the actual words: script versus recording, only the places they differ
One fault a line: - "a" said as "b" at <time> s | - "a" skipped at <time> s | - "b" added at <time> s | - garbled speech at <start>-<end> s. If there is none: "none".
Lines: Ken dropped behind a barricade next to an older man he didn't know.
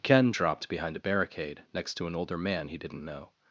none